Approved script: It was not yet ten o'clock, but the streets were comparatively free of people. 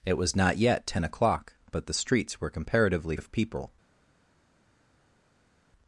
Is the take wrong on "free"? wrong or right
wrong